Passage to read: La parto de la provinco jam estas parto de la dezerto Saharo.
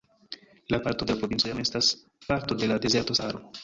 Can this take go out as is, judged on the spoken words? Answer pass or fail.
pass